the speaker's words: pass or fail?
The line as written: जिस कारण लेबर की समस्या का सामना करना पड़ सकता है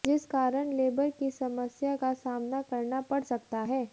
pass